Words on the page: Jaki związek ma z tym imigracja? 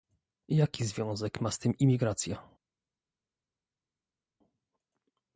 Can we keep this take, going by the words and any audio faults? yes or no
yes